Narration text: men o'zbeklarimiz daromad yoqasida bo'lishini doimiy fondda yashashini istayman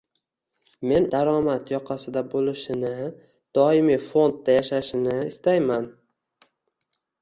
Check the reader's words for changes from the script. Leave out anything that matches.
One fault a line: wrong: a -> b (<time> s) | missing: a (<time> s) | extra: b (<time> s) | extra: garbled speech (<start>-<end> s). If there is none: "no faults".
missing: o'zbeklarimiz (1.0 s)